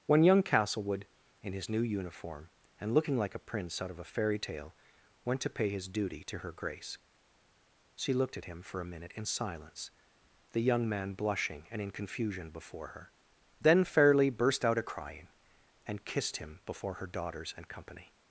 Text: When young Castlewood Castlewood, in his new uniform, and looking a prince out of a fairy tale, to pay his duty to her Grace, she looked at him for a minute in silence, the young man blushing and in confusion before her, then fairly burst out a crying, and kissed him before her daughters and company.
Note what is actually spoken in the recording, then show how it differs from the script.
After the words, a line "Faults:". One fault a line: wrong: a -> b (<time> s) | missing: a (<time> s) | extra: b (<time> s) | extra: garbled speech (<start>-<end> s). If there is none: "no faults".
When young Castlewood, in his new uniform, and looking like a prince out of a fairy tale, went to pay his duty to her Grace, she looked at him for a minute in silence, the young man blushing and in confusion before her, then fairly burst out a crying, and kissed him before her daughters and company.
Faults:
missing: Castlewood (1.1 s)
extra: like (3.2 s)
extra: went (5.2 s)